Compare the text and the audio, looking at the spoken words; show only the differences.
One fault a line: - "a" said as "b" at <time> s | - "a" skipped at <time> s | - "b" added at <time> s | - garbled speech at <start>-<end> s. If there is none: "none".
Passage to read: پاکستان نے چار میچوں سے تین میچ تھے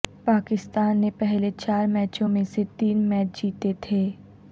- "پہلے" added at 1.2 s
- "میں" added at 2.3 s
- "جیتے" added at 3.4 s